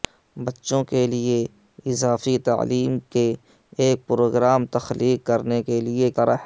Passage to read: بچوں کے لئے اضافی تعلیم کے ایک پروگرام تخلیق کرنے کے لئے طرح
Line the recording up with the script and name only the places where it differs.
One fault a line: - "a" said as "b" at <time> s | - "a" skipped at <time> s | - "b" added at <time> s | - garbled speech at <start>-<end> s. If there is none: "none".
none